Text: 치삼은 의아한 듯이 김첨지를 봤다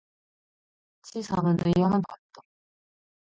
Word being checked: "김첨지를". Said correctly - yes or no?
no